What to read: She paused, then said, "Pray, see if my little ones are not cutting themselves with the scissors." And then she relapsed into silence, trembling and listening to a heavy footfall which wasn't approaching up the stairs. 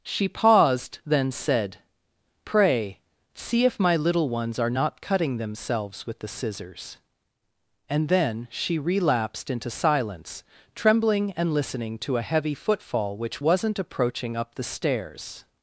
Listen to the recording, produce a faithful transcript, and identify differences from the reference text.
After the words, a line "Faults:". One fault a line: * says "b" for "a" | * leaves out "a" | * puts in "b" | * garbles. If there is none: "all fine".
She paused, then said, "Pray, see if my little ones are not cutting themselves with the scissors." And then she relapsed into silence, trembling and listening to a heavy footfall which wasn't approaching up the stairs.
Faults:
all fine